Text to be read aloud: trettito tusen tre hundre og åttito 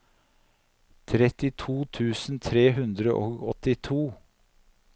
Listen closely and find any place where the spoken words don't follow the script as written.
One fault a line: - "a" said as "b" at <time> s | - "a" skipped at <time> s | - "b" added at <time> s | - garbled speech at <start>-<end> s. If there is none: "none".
none